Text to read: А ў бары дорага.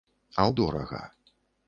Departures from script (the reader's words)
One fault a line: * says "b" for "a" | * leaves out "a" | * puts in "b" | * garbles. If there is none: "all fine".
* leaves out "бары"